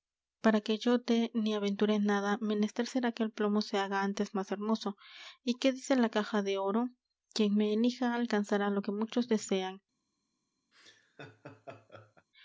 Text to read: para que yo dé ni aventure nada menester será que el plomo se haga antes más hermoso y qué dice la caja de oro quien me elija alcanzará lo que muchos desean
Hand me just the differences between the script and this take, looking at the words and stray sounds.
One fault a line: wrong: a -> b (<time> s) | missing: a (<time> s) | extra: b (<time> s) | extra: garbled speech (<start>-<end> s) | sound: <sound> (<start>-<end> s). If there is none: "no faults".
sound: laugh (10.7-12.3 s)